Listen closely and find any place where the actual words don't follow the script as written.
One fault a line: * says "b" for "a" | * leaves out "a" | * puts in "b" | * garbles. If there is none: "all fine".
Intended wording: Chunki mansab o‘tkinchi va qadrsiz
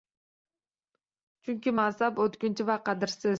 all fine